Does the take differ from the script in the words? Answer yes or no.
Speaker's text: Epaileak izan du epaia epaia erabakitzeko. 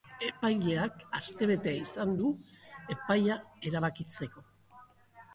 yes